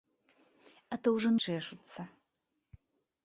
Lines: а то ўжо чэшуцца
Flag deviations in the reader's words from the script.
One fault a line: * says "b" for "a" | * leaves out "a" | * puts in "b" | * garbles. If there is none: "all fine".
all fine